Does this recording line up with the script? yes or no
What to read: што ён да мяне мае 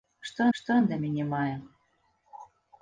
no